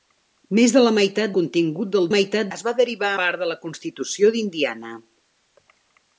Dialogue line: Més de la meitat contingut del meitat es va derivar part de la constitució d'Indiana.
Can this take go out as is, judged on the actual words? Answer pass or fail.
pass